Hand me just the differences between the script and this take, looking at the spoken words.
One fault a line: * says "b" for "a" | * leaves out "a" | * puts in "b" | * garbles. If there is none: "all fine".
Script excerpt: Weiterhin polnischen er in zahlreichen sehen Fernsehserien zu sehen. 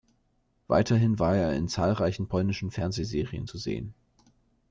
* says "war" for "polnischen"
* says "polnischen" for "sehen"